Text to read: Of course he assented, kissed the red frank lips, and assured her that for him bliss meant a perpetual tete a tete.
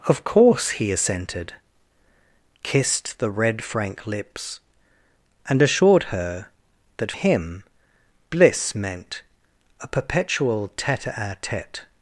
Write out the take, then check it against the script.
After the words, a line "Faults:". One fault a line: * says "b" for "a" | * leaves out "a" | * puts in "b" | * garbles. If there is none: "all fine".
Of course he assented, kissed the red frank lips, and assured her that him bliss meant a perpetual tete a tete.
Faults:
* leaves out "for"